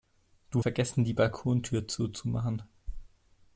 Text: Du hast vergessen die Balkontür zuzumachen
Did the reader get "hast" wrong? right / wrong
wrong